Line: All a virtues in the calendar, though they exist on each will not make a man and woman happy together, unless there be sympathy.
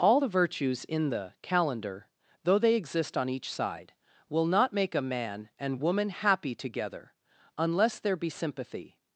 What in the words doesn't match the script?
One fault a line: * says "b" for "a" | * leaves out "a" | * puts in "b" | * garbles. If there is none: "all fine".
* says "the" for "a"
* puts in "side"